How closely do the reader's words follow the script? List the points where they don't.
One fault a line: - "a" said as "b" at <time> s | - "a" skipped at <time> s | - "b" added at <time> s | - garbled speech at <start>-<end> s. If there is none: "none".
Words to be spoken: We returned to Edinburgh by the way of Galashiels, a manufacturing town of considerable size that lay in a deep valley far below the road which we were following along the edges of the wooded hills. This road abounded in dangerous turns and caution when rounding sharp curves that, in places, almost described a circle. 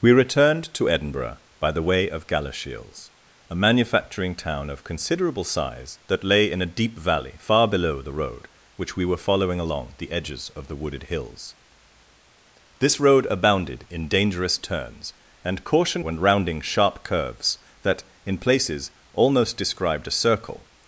none